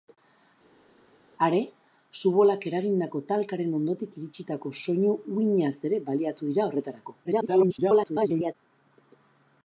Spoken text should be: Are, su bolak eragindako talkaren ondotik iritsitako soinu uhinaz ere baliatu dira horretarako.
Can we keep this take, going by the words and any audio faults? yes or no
no